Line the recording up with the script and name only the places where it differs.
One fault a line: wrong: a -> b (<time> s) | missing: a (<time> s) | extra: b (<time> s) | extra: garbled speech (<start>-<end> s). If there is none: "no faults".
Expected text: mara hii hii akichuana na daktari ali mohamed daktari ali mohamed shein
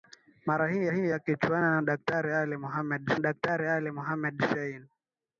no faults